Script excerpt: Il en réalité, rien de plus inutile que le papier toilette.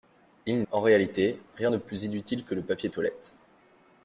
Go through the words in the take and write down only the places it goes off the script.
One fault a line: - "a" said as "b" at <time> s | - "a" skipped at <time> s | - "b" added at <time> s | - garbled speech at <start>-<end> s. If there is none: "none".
none